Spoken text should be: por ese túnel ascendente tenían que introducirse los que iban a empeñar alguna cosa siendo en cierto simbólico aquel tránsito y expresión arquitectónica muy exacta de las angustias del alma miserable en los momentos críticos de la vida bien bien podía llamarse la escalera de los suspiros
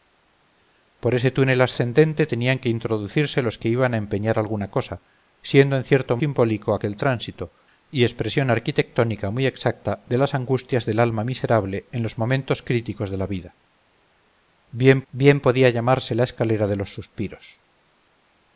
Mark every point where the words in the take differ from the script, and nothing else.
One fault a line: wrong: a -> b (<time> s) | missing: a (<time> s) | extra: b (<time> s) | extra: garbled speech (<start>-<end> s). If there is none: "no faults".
no faults